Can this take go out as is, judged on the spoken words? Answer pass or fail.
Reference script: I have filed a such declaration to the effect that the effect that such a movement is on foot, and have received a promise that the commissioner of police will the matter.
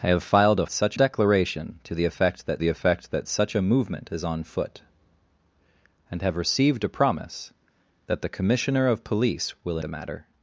pass